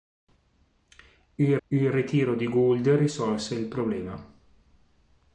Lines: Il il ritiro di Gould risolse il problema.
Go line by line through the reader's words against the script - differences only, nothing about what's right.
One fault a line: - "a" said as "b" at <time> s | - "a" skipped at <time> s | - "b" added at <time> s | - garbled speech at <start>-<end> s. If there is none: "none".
none